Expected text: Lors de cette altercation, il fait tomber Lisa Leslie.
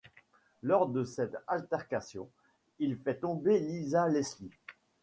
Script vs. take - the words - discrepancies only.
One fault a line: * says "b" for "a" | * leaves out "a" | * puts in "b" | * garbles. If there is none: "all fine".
all fine